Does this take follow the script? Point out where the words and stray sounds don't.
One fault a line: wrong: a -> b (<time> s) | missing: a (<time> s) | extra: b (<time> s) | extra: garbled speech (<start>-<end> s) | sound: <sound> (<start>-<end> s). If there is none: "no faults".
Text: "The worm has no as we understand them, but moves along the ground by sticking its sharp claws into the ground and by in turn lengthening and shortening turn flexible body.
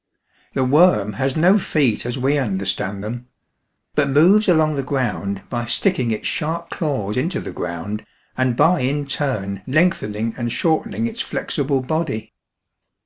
extra: feet (1.6 s)
wrong: turn -> its (11.0 s)